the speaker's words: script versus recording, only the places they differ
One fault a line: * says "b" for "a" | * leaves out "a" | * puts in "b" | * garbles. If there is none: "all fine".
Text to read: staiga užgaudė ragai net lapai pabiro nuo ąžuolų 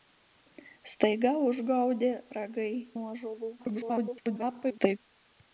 * leaves out "net lapai pabiro"
* garbles